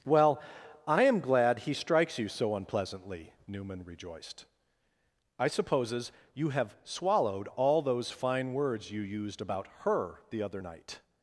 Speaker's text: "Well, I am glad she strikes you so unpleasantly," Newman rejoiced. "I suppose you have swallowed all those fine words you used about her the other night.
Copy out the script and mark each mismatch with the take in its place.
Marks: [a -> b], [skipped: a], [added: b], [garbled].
"Well, I am glad [she -> he] strikes you so unpleasantly," Newman rejoiced. "I [suppose -> supposes] you have swallowed all those fine words you used about her the other night.